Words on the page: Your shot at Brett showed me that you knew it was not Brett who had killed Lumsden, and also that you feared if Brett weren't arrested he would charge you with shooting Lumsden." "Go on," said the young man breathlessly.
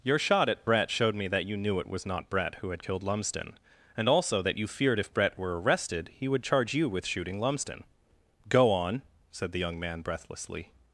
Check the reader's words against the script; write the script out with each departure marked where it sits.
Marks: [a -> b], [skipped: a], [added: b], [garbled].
Your shot at Brett showed me that you knew it was not Brett who had killed Lumsden, and also that you feared if Brett [weren't -> were] arrested he would charge you with shooting Lumsden." "Go on," said the young man breathlessly.